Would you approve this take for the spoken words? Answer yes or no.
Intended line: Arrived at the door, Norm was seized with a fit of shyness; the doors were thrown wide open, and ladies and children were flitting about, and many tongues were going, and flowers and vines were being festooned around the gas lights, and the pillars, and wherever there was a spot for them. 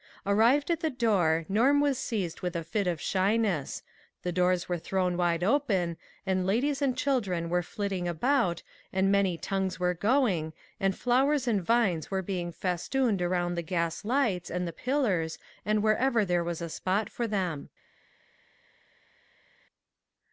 yes